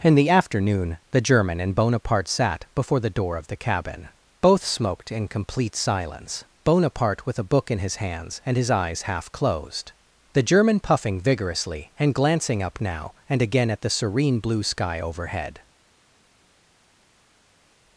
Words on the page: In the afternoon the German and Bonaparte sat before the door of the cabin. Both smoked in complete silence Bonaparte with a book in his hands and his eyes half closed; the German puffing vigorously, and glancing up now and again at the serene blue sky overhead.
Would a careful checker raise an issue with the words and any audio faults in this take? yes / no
no